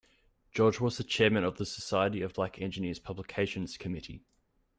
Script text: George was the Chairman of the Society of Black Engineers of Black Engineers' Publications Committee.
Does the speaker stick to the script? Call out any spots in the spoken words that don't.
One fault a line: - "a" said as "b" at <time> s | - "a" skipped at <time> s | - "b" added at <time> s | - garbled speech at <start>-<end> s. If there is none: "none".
- "of Black Engineers" skipped at 3.0 s